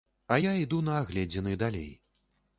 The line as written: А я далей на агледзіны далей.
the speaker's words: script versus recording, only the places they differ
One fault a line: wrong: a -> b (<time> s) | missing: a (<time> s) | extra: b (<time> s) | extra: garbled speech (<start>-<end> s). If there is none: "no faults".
wrong: далей -> іду (0.6 s)